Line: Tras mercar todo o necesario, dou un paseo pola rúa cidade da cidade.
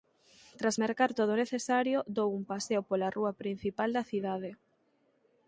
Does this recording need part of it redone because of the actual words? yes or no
yes